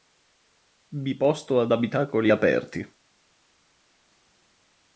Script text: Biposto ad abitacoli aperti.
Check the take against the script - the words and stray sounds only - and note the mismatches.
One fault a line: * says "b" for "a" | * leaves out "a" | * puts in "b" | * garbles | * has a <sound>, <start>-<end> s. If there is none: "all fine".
all fine